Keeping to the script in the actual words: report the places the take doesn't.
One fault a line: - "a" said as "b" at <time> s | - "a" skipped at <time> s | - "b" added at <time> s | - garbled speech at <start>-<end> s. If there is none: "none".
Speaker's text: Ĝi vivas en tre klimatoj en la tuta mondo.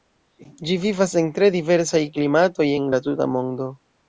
- "diversaj" added at 1.6 s